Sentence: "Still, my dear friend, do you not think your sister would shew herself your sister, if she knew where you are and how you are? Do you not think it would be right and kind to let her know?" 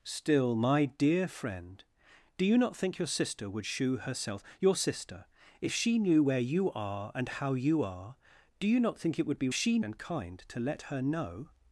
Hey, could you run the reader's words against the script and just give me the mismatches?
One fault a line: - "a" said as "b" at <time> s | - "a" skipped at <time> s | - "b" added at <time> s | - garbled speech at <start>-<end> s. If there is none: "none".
- "right" said as "she" at 9.5 s